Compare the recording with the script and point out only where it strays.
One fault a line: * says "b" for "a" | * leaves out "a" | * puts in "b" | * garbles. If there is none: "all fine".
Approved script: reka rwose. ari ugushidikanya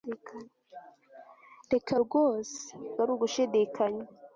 all fine